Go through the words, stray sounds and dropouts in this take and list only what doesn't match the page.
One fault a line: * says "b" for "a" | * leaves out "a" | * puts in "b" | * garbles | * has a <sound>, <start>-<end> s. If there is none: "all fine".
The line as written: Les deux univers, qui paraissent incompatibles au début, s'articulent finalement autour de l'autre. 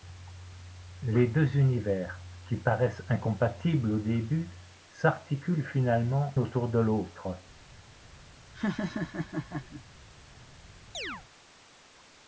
* has a laugh, 8.5-9.8 s
* has a chirp, 10.9-11.2 s